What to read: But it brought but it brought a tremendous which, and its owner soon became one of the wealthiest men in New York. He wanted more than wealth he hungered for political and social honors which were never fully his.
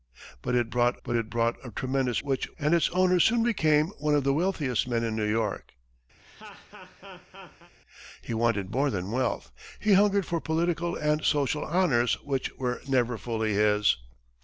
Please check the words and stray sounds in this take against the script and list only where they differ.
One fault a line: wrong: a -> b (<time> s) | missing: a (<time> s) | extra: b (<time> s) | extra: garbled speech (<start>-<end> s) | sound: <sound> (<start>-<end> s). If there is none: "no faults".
sound: laugh (6.2-7.7 s)